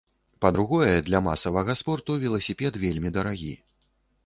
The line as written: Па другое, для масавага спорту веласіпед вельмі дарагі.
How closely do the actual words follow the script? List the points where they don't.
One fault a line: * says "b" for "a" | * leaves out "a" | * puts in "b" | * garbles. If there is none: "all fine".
all fine